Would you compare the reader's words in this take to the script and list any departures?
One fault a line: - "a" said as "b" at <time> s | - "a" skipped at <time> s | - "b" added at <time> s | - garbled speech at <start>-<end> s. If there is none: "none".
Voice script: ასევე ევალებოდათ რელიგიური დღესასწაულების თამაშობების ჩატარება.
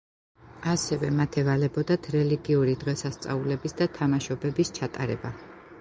- "მათ" added at 1.2 s
- "და" added at 3.8 s